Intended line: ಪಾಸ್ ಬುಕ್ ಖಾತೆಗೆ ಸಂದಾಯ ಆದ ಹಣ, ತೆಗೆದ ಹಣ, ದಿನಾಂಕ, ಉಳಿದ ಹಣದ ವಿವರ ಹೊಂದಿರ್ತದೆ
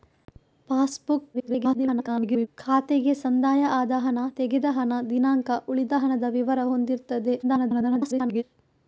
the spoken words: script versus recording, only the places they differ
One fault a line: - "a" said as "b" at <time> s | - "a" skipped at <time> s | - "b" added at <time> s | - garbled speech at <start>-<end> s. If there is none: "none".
- garbled speech at 1.3-2.5 s
- garbled speech at 7.4-8.4 s